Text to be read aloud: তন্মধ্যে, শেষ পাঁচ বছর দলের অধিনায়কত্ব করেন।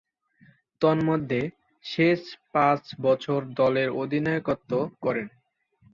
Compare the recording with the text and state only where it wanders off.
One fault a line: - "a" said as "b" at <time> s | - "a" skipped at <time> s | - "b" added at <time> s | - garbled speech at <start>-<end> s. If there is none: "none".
none